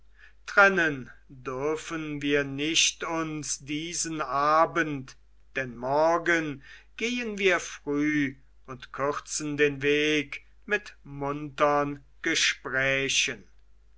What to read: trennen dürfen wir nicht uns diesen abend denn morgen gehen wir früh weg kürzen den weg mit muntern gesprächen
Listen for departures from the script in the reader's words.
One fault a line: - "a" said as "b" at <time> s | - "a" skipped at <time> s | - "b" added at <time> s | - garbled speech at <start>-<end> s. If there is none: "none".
- "weg" said as "und" at 8.7 s